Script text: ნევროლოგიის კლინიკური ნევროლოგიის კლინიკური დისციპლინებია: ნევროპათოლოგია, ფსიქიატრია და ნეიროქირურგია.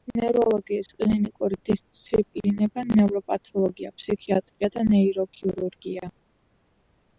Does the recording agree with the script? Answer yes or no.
no